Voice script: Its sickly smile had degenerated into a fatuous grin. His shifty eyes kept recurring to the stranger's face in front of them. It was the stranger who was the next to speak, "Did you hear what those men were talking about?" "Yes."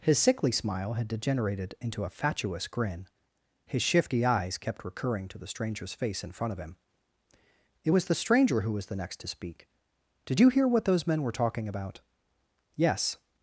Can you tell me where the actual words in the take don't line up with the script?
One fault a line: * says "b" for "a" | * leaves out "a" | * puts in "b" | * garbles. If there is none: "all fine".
* says "His" for "Its"
* says "him" for "them"